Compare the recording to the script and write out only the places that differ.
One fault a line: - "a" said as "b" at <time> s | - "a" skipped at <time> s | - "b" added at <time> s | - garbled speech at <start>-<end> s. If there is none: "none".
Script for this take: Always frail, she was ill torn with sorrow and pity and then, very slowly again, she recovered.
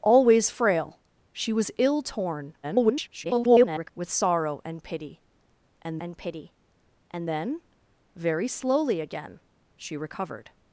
- garbled speech at 2.6-3.9 s
- "and pity and" added at 6.0 s